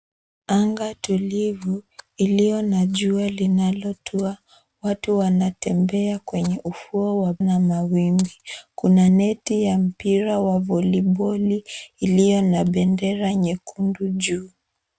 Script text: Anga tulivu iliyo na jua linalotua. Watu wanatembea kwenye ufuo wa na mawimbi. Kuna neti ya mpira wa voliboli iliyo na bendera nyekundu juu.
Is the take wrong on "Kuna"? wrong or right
right